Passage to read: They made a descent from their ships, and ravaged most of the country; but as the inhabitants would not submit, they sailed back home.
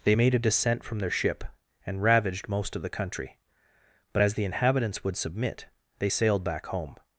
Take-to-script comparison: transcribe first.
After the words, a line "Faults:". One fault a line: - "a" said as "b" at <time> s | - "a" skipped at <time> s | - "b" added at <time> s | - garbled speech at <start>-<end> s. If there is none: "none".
They made a descent from their ship, and ravaged most of the country; but as the inhabitants would submit, they sailed back home.
Faults:
- "ships" said as "ship" at 1.1 s
- "not" skipped at 5.2 s